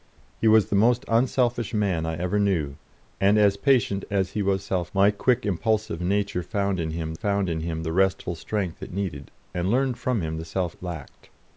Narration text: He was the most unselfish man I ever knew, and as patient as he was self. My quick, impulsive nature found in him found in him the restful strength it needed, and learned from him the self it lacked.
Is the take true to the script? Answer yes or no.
yes